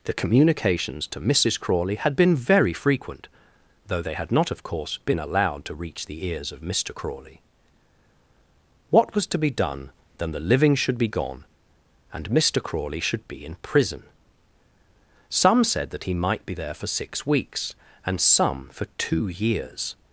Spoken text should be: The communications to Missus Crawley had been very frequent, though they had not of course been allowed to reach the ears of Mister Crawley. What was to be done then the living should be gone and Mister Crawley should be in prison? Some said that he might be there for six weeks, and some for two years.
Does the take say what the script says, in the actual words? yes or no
yes